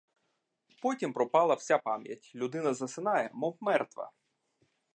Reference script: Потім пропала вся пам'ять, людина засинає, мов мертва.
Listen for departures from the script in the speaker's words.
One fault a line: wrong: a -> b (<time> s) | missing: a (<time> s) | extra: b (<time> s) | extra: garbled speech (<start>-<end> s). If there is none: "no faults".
no faults